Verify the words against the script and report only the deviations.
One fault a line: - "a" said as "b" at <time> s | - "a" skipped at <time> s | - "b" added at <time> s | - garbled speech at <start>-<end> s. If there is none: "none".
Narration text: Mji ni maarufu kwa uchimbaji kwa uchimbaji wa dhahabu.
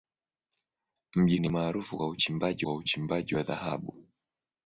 none